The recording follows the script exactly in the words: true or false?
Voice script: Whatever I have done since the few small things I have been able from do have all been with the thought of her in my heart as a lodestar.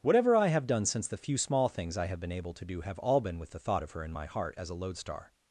false